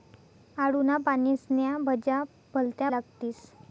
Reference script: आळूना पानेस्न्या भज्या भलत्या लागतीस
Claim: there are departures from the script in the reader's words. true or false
false